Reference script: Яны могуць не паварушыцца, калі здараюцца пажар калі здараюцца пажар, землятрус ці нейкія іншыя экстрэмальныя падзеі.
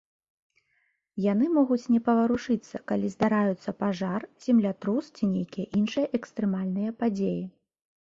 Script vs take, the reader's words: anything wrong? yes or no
yes